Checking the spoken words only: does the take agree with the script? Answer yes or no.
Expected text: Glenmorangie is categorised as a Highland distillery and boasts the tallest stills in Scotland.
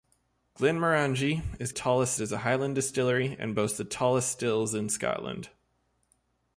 no